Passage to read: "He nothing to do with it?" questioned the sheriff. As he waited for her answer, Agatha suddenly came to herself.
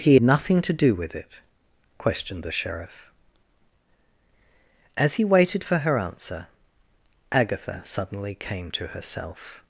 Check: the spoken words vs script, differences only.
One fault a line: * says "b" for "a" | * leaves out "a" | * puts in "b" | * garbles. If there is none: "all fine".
all fine